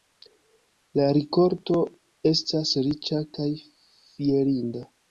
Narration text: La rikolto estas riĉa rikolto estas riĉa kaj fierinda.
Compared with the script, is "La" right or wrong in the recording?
right